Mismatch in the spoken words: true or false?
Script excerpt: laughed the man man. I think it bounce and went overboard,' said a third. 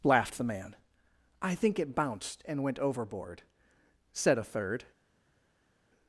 true